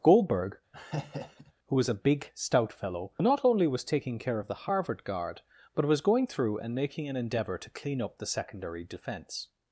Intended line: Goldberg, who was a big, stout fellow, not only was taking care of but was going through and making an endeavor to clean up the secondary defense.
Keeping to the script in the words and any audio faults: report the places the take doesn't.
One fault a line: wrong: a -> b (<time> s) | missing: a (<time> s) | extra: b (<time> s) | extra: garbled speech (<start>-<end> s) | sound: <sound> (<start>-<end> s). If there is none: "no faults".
sound: laugh (0.7-1.5 s)
extra: the Harvard guard (4.5 s)